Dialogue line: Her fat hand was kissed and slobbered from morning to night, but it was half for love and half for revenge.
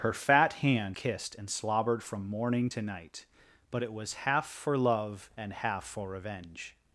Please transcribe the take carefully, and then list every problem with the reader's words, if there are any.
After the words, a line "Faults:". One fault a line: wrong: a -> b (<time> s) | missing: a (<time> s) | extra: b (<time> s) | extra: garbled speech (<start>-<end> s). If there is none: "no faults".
Her fat hand kissed and slobbered from morning to night, but it was half for love and half for revenge.
Faults:
missing: was (1.0 s)